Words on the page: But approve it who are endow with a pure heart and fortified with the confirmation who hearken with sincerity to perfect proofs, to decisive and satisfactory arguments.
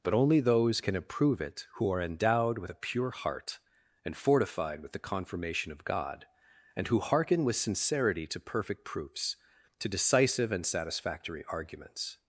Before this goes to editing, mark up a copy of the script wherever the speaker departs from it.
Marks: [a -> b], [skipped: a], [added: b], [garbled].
But [added: only those can] approve it who are [endow -> endowed] with a pure heart and fortified with the confirmation [added: of God and] who hearken with sincerity to perfect proofs, to decisive and satisfactory arguments.